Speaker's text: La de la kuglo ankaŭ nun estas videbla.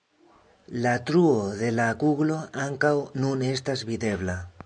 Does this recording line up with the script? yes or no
no